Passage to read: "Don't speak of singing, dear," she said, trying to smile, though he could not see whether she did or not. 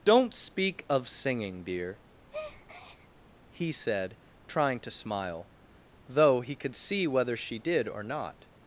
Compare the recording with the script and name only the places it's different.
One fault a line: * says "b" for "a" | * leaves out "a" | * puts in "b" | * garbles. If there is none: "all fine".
* says "he" for "she"
* leaves out "not"